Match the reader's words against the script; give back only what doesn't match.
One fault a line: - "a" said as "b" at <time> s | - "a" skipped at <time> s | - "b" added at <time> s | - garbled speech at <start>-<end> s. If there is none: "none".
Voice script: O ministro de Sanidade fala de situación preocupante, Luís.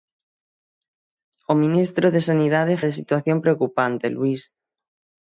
- "fala" skipped at 2.8 s